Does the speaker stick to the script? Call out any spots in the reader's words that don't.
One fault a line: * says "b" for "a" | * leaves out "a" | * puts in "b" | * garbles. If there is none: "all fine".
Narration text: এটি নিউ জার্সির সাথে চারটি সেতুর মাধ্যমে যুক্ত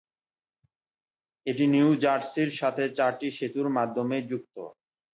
all fine